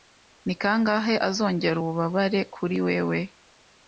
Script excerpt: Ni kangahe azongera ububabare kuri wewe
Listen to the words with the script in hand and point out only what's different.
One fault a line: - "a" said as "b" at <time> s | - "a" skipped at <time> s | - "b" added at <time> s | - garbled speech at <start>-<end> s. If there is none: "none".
none